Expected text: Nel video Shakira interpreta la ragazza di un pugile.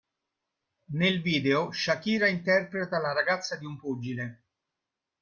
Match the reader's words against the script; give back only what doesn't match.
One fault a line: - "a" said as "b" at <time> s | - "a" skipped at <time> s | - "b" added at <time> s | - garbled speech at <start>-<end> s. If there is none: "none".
none